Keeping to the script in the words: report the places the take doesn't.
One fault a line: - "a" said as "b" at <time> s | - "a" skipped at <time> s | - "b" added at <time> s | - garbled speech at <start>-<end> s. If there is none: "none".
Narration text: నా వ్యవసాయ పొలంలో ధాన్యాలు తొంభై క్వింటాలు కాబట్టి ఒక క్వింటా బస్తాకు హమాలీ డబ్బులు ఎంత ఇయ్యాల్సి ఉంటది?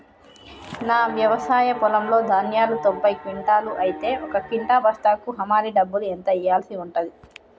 - "కాబట్టి" said as "అయితే" at 3.8 s